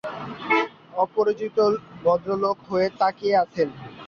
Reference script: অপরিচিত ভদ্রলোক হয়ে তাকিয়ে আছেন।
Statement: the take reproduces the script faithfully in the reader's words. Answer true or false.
true